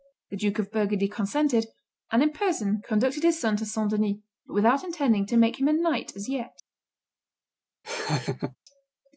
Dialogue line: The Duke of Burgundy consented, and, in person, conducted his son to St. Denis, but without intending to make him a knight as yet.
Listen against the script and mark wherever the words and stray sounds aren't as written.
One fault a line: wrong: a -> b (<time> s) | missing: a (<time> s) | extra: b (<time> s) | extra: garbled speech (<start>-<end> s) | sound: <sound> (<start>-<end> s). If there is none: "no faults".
sound: laugh (7.8-8.6 s)